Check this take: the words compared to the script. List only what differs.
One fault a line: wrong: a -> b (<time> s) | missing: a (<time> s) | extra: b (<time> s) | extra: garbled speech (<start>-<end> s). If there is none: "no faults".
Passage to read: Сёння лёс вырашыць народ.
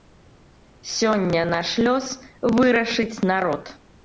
extra: наш (1.5 s)